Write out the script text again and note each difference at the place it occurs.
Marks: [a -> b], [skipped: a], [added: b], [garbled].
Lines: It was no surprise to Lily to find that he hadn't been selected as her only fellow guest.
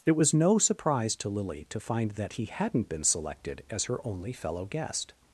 It was no surprise to Lily to find that he hadn't been selected as her only fellow guest.